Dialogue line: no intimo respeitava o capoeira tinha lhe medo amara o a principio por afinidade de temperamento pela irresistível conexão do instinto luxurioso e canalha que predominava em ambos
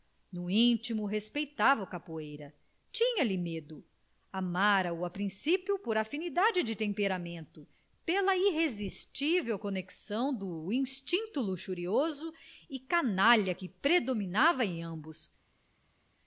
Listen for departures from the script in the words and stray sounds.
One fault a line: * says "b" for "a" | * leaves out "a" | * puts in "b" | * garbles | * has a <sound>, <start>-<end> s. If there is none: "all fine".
all fine